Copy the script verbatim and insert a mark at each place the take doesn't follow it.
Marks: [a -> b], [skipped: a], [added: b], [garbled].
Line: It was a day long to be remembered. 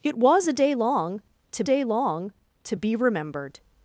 It was a day long to [added: day long to] be remembered.